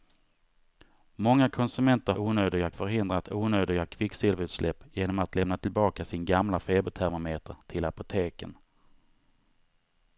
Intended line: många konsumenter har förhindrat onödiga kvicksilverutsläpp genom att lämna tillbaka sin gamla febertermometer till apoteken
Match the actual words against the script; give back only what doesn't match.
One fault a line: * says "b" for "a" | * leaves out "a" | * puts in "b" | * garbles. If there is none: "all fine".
* says "onödiga" for "har"